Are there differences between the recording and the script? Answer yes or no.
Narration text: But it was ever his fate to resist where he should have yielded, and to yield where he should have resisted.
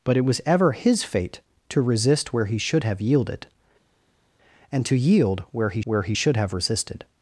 yes